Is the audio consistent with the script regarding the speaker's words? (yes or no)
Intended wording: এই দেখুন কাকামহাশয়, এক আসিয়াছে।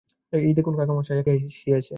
yes